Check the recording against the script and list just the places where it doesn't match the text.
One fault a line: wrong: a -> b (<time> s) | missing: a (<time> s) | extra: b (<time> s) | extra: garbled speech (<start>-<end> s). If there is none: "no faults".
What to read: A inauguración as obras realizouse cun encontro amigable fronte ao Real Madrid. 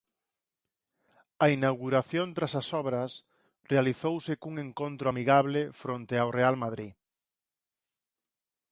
extra: tras (2.4 s)